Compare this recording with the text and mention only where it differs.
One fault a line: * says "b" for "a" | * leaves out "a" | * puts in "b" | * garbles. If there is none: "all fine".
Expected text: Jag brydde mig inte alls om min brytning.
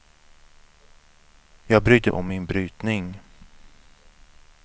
* leaves out "mig inte alls"